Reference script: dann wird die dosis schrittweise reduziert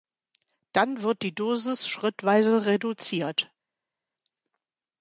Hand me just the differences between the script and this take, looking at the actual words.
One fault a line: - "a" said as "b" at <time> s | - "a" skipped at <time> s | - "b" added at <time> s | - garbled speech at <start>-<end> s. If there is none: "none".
none